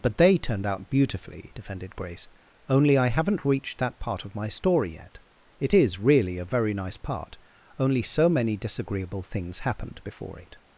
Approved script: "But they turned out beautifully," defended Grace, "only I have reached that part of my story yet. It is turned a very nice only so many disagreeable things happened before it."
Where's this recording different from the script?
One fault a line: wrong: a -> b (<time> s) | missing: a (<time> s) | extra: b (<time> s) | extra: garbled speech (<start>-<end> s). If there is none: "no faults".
wrong: have -> haven't (3.1 s)
wrong: turned -> really (6.0 s)
extra: part (7.0 s)